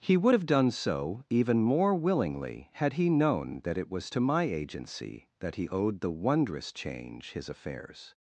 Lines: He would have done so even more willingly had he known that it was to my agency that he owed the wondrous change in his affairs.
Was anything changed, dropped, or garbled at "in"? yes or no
yes